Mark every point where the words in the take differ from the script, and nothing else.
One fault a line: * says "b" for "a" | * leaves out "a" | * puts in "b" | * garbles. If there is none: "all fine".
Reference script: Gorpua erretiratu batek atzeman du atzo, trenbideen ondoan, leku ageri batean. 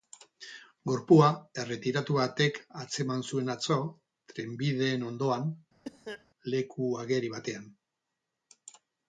* says "zuen" for "du"